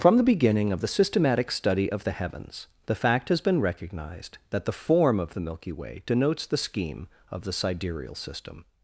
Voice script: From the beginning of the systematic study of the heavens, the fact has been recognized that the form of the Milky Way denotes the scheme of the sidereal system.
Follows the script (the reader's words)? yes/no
yes